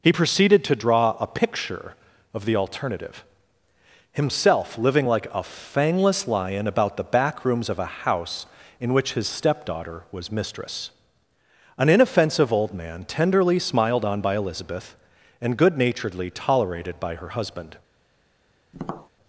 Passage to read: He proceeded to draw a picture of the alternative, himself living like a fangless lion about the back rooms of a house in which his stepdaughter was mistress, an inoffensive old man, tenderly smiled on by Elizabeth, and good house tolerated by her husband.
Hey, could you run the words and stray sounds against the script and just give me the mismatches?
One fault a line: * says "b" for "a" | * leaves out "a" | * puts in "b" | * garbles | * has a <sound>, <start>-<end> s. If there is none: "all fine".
* says "naturedly" for "house"
* has a tap, 18.7-19.1 s